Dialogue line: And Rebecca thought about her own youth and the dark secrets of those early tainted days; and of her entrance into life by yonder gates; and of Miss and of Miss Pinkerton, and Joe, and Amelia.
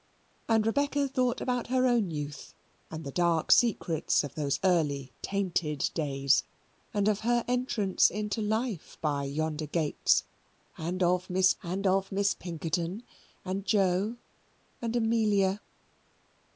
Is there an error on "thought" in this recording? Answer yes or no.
no